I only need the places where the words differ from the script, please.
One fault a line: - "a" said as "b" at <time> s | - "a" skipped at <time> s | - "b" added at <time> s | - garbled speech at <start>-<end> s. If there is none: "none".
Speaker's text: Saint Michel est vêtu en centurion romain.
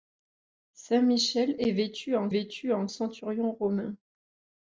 - "vêtu en" added at 2.3 s